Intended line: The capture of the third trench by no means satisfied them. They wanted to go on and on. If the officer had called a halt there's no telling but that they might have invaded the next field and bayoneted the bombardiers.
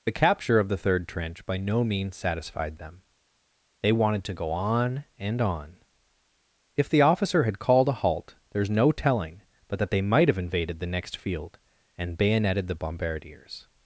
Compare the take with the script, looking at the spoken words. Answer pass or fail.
pass